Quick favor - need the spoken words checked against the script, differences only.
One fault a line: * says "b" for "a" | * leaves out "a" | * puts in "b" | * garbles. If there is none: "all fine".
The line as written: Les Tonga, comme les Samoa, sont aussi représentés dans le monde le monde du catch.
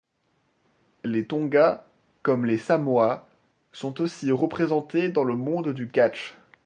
* leaves out "le monde"